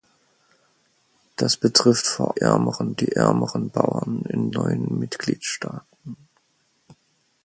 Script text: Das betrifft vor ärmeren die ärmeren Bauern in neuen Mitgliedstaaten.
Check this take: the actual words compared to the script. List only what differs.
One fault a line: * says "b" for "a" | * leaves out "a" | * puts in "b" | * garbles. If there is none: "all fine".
all fine